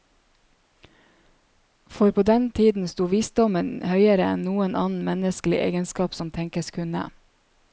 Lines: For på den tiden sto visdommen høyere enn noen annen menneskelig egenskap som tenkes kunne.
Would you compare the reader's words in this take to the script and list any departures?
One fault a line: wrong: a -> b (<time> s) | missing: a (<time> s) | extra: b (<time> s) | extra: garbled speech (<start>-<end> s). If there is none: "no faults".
no faults